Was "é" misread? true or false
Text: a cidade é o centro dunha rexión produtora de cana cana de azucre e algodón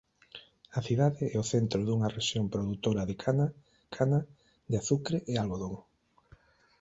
false